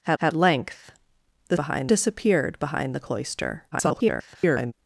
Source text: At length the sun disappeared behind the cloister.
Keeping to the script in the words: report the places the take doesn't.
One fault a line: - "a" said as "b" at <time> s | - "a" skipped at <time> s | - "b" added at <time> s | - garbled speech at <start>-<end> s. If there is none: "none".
- "at" added at 0.2 s
- "sun" said as "behind" at 1.5 s
- garbled speech at 3.7-4.7 s